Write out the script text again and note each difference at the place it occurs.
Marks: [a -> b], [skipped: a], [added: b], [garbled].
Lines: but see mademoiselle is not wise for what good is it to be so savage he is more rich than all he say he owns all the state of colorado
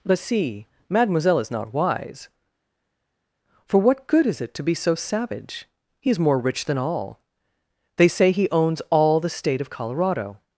but see mademoiselle is not wise for what good is it to be so savage he is more rich than all [he -> they] say he owns all the state of colorado